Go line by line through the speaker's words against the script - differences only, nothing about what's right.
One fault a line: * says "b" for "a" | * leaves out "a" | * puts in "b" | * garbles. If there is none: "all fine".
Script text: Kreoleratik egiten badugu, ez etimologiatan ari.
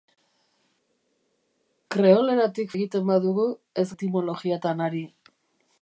all fine